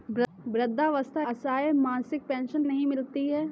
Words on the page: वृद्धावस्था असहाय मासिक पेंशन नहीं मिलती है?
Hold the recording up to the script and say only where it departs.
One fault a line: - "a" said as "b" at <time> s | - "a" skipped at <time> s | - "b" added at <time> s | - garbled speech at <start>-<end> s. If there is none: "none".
none